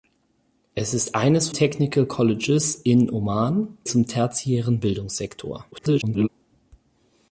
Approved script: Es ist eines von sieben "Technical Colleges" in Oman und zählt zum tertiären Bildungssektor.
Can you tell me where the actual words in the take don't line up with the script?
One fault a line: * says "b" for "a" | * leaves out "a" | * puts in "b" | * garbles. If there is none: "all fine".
* leaves out "von sieben"
* leaves out "und zählt"
* garbles